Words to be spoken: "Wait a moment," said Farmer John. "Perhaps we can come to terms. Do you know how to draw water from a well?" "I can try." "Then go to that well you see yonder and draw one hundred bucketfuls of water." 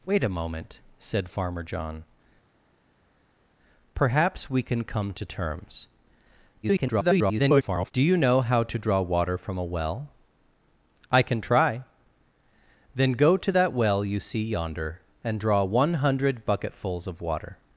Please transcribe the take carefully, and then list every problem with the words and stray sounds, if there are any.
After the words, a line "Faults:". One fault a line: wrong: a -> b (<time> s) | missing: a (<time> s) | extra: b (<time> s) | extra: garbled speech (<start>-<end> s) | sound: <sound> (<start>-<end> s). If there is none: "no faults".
"Wait a moment," said Farmer John. "Perhaps we can come to terms. [garbled] Do you know how to draw water from a well?" "I can try." "Then go to that well you see yonder and draw one hundred bucketfuls of water."
Faults:
extra: garbled speech (6.6-7.9 s)